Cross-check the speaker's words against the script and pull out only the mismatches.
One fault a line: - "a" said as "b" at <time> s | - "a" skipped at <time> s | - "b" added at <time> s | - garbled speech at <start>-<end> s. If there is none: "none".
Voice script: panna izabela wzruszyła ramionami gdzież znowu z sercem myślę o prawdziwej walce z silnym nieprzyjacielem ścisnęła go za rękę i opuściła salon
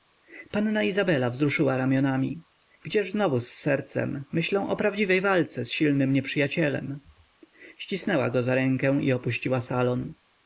none